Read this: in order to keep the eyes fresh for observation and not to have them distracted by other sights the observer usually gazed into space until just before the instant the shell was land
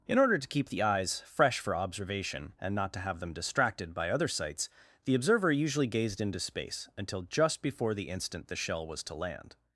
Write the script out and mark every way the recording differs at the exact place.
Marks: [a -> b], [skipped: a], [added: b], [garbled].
in order to keep the eyes fresh for observation and not to have them distracted by other sights the observer usually gazed into space until just before the instant the shell was [added: to] land